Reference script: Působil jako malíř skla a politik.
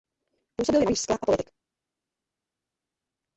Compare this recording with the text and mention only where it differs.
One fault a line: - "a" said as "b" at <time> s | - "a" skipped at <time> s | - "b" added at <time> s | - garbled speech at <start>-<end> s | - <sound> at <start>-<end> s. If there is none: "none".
- "jako" skipped at 0.8 s